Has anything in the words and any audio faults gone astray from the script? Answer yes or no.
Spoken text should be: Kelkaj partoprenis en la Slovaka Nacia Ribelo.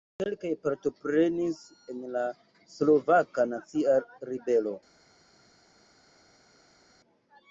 no